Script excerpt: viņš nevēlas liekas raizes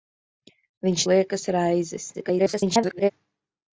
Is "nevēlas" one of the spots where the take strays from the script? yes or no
yes